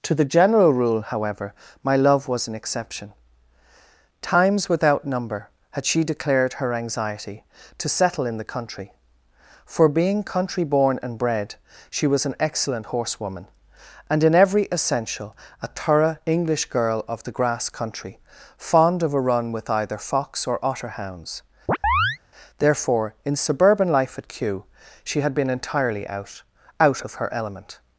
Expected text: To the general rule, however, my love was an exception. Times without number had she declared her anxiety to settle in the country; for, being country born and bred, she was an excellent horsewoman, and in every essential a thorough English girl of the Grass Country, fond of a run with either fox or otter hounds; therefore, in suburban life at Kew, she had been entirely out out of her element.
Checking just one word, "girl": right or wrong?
right